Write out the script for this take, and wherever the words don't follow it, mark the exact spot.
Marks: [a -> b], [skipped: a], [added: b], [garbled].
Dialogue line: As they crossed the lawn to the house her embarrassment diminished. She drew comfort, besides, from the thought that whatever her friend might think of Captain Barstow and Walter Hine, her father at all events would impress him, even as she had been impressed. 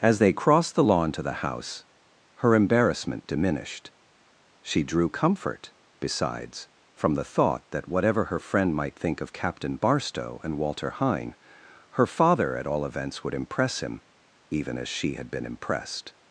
As they crossed the lawn to the house her embarrassment diminished. She drew comfort, besides, from the thought that whatever her friend might think of Captain Barstow and Walter Hine, her father at all events would impress him, even as she had been impressed.